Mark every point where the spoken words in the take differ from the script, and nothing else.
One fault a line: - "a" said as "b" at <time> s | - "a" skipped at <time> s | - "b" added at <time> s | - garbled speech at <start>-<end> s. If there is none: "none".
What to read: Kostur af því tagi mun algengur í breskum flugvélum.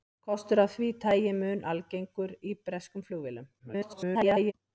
- garbled speech at 3.6-4.5 s